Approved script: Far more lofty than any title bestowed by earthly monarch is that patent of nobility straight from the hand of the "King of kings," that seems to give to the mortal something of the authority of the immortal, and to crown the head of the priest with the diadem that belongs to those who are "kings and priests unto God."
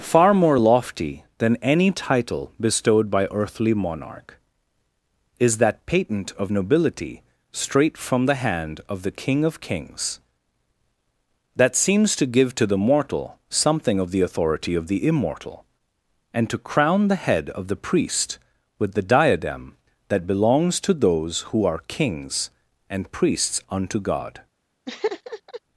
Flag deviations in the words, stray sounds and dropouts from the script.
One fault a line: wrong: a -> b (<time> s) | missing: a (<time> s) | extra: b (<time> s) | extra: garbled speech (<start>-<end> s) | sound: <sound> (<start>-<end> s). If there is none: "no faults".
sound: laugh (24.9-25.6 s)